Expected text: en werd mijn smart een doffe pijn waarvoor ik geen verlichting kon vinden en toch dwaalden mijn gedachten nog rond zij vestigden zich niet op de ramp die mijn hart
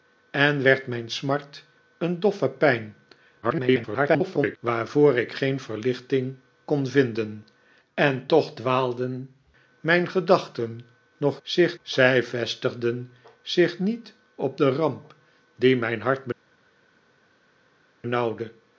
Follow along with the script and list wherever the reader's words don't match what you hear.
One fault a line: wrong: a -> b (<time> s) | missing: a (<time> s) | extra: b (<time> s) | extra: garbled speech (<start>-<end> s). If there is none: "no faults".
extra: garbled speech (3.4-4.6 s)
wrong: rond -> zich (11.4 s)